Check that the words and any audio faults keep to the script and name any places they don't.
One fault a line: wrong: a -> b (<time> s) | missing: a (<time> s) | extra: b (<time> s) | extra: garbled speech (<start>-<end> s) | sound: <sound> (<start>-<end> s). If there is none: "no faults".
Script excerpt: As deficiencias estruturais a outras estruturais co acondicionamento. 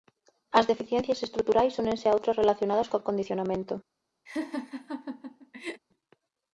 extra: únense (1.8 s)
wrong: estruturais -> relacionadas (2.4 s)
sound: laugh (4.3-5.8 s)